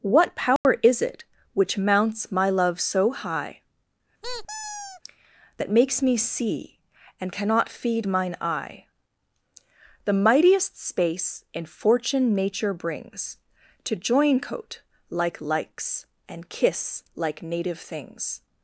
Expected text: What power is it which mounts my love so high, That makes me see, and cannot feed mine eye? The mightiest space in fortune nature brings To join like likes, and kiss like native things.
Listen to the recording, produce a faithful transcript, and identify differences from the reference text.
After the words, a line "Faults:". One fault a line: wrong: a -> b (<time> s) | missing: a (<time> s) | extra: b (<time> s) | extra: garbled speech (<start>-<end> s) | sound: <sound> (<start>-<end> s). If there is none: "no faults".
What power is it which mounts my love so high, That makes me see, and cannot feed mine eye? The mightiest space in fortune nature brings To join coat like likes, and kiss like native things.
Faults:
sound: dropout (0.6-0.6 s)
sound: squeak (4.2-5.0 s)
extra: coat (14.4 s)